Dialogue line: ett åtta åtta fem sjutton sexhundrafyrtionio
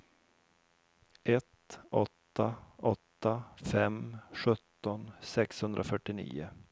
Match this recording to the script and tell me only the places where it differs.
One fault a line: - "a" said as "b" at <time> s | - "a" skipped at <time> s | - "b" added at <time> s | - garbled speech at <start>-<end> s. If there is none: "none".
none